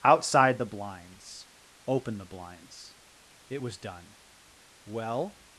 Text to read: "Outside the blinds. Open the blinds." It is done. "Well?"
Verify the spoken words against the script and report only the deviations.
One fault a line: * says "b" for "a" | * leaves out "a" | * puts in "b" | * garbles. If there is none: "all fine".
* says "was" for "is"